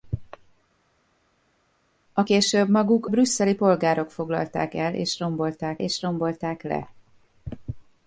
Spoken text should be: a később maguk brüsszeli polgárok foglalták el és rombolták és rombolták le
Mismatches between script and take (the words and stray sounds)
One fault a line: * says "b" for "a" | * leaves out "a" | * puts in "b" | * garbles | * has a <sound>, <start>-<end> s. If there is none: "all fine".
all fine